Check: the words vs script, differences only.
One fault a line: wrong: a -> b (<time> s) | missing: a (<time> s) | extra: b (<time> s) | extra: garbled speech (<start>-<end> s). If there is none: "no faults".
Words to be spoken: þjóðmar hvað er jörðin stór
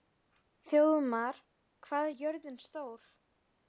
no faults